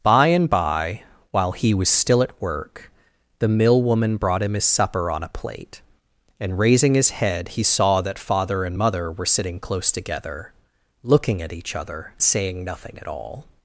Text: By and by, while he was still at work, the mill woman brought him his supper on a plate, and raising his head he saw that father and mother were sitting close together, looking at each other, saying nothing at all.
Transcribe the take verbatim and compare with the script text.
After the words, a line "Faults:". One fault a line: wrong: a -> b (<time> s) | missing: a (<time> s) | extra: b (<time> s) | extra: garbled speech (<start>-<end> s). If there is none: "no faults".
By and by, while he was still at work, the mill woman brought him his supper on a plate, and raising his head he saw that father and mother were sitting close together, looking at each other, saying nothing at all.
Faults:
no faults